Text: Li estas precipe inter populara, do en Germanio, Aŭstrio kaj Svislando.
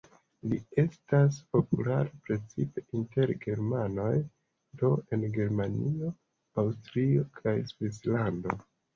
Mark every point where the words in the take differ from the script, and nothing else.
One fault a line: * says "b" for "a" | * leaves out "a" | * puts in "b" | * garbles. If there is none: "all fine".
* puts in "populara"
* says "germanoj" for "populara"